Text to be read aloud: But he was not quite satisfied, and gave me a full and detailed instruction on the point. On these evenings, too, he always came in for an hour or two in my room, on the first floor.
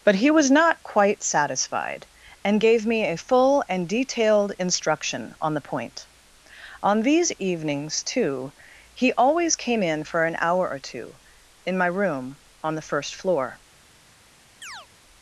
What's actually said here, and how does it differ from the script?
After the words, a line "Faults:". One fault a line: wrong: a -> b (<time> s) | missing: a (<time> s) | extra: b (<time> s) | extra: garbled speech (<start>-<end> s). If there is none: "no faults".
But he was not quite satisfied, and gave me a full and detailed instruction on the point. On these evenings, too, he always came in for an hour or two in my room, on the first floor.
Faults:
no faults